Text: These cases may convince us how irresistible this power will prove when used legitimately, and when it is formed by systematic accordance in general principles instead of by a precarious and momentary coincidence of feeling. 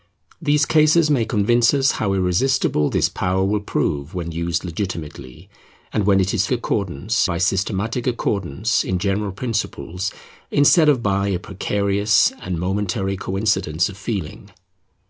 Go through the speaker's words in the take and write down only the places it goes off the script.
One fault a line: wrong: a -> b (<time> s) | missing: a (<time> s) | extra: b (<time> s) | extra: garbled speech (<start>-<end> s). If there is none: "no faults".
wrong: formed -> accordance (6.5 s)